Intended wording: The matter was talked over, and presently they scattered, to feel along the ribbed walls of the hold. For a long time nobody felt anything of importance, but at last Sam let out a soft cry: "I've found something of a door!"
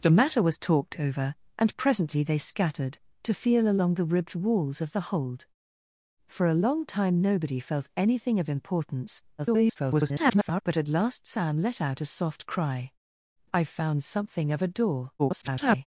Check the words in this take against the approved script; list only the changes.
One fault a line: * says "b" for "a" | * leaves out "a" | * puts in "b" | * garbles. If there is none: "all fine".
* garbles
* garbles